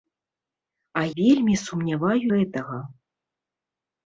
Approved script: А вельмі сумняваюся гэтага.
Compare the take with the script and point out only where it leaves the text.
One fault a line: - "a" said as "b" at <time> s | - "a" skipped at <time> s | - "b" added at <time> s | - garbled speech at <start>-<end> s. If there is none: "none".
none